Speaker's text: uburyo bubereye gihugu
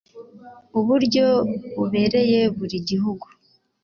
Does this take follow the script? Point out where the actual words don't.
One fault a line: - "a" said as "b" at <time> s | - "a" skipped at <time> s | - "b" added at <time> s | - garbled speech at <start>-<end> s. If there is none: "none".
- "buri" added at 2.6 s